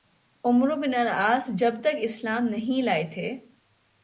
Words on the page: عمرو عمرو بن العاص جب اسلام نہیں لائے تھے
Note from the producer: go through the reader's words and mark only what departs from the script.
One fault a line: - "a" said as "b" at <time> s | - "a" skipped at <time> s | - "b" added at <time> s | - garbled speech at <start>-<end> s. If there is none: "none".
- "عمرو" skipped at 0.8 s
- "تک" added at 1.8 s